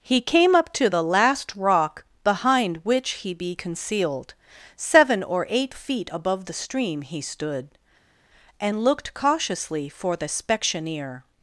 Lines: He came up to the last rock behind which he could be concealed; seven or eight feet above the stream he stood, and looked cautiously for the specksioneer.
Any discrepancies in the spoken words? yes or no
yes